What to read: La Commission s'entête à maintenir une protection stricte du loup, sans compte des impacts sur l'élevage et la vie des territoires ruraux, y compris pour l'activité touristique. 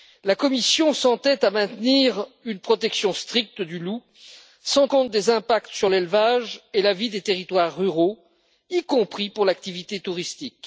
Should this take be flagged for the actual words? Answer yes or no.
no